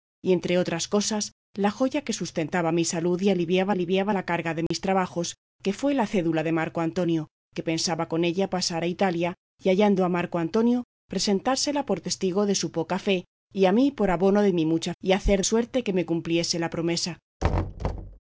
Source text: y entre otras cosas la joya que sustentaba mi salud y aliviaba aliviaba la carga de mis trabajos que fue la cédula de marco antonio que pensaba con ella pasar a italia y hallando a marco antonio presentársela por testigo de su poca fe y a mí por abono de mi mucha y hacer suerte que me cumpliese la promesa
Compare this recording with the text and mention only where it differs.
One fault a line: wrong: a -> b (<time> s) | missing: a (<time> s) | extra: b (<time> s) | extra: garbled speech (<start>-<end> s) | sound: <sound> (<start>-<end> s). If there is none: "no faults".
sound: dropout (4.7-4.7 s)
sound: thud (17.4-18.2 s)